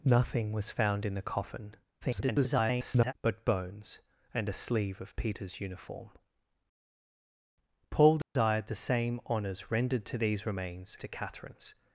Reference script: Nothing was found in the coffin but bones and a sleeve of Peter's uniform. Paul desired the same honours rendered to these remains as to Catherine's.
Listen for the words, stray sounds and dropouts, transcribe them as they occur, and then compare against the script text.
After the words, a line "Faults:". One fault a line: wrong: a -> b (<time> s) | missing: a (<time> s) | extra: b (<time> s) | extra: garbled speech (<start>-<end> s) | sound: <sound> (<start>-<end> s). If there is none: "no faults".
Nothing was found in the coffin [garbled] but bones and a sleeve of Peter's uniform. Paul desired the same honours rendered to these remains to Catherine's.
Faults:
extra: garbled speech (2.0-3.1 s)
sound: dropout (8.2-8.4 s)
missing: as (11.0 s)